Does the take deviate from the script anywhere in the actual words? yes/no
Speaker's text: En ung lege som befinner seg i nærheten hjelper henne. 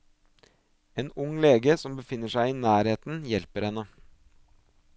no